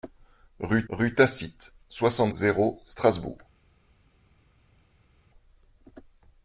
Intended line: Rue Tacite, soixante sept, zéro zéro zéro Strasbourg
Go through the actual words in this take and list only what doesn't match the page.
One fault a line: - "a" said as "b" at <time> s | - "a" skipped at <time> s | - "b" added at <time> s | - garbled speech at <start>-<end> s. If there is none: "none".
- "rue" added at 0.9 s
- "sept zéro zéro" skipped at 2.3 s